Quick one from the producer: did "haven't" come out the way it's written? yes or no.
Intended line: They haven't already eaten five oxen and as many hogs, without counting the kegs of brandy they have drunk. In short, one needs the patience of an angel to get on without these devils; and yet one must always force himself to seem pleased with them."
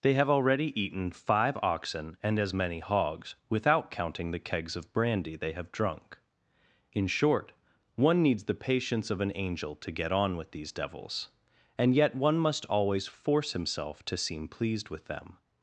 no